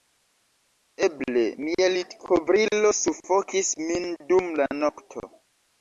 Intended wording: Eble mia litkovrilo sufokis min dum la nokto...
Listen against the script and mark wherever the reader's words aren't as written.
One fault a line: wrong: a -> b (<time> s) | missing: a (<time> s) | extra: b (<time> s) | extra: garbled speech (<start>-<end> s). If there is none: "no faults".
no faults